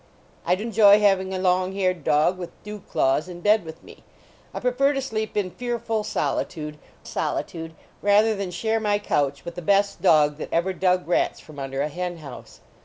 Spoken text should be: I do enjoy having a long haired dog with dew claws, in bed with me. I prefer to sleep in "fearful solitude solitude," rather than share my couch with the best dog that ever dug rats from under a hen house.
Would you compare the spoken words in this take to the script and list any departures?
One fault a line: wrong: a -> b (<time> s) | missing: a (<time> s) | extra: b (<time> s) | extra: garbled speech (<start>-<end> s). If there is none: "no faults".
no faults